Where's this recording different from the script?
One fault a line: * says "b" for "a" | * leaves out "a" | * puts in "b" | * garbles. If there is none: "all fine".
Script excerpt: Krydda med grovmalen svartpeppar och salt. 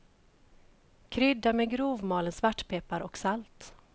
all fine